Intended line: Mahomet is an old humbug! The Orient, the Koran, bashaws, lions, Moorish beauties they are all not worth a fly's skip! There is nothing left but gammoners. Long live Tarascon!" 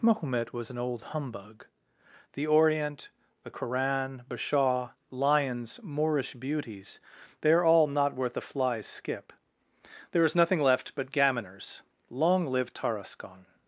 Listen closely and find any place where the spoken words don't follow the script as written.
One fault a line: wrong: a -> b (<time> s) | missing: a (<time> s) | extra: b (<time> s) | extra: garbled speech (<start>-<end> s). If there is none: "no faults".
wrong: is -> was (0.5 s)
wrong: bashaws -> bashaw (4.3 s)